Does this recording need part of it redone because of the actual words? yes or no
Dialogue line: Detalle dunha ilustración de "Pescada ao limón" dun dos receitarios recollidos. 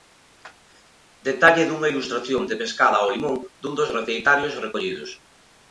no